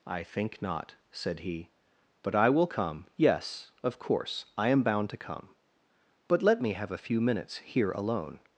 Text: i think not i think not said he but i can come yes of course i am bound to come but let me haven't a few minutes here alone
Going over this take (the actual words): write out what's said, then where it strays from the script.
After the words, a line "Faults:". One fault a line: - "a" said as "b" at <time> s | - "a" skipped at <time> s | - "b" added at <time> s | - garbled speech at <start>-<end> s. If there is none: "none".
i think not said he but i will come yes of course i am bound to come but let me have a few minutes here alone
Faults:
- "i think not" skipped at 0.9 s
- "can" said as "will" at 2.5 s
- "haven't" said as "have" at 6.7 s